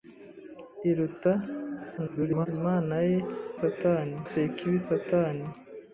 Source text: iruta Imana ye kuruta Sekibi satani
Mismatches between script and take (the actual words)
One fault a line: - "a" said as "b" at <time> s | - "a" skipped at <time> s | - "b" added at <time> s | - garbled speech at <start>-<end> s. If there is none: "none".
- garbled speech at 2.0-2.5 s
- "kuruta" said as "satani" at 3.6 s